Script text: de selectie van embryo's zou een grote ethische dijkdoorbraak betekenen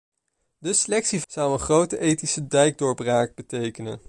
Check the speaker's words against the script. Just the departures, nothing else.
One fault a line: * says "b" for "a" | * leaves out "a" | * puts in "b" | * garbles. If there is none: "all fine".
* leaves out "van embryo's"